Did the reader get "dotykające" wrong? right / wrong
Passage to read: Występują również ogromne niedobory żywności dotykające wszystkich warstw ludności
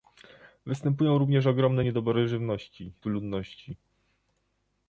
wrong